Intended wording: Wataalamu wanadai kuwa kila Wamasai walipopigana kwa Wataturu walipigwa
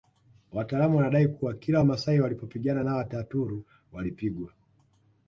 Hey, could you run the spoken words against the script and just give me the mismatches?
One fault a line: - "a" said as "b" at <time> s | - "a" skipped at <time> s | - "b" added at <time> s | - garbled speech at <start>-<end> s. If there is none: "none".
- "kwa" said as "na" at 2.8 s